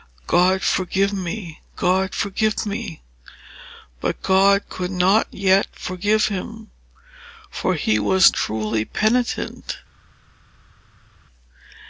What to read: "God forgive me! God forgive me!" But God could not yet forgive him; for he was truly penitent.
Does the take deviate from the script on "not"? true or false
false